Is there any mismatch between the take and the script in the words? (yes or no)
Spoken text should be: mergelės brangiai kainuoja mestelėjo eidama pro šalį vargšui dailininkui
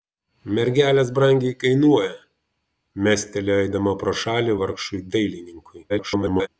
yes